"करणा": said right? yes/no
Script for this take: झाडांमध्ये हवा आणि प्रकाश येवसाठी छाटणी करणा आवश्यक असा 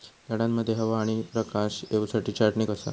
no